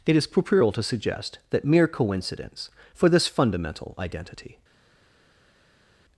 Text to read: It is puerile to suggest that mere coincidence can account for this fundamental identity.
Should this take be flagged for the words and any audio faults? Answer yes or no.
yes